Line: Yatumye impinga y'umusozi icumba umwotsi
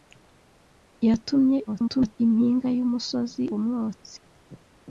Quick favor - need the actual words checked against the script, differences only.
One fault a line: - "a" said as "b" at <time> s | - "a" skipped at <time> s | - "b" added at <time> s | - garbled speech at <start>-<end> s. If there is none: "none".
- garbled speech at 1.7-2.2 s
- "icumba" skipped at 3.4 s